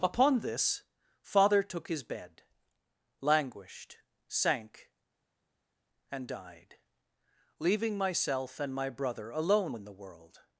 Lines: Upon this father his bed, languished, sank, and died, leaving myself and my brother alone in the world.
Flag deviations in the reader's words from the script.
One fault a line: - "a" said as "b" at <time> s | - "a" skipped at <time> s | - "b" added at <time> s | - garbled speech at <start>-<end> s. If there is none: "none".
- "took" added at 1.6 s